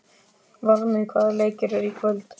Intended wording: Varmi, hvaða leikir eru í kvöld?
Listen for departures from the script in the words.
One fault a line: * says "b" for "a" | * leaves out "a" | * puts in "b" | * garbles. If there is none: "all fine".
all fine